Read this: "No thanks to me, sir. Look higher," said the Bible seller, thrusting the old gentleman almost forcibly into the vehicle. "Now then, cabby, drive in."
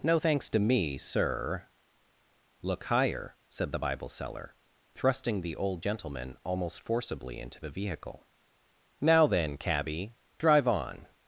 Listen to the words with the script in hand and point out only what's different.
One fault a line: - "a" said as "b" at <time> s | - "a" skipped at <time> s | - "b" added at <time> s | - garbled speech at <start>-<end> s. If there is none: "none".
- "in" said as "on" at 10.7 s